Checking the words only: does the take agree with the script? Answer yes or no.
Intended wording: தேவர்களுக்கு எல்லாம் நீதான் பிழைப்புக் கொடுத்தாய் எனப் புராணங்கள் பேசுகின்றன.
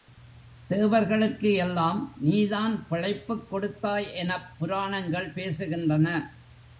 yes